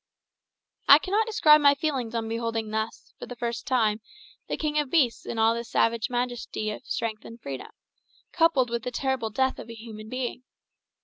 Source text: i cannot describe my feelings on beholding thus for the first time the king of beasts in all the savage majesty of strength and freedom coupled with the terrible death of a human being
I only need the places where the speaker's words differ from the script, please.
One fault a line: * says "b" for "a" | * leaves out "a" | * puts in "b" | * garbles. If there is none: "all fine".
all fine